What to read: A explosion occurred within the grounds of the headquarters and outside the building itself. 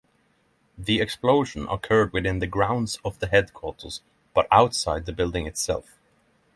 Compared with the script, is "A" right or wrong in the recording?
wrong